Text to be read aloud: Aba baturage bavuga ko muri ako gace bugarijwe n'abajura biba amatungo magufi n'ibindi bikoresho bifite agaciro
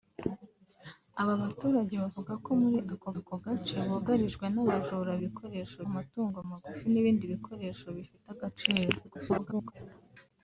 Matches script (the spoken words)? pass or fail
fail